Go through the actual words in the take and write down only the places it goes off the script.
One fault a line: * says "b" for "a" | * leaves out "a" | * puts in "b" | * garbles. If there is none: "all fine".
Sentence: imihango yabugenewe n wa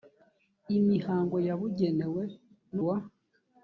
all fine